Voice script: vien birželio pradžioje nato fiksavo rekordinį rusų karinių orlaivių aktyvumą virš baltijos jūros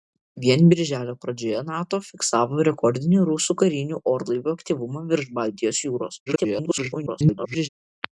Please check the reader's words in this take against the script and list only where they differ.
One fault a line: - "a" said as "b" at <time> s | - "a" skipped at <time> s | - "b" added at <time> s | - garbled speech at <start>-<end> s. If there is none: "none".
- garbled speech at 6.3-7.7 s